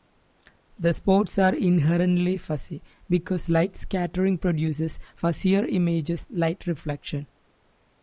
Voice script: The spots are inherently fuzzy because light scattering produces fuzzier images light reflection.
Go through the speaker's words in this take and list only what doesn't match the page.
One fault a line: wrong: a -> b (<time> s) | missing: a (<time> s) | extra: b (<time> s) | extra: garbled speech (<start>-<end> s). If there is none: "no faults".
no faults